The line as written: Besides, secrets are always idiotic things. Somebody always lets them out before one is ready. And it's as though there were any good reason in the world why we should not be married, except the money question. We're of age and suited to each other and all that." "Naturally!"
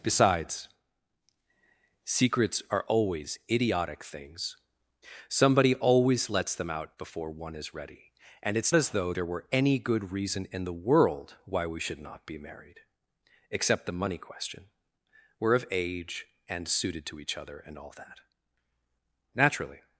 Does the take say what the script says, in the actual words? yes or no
yes